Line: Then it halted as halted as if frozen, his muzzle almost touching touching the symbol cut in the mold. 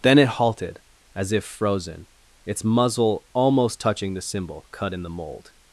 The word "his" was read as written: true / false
false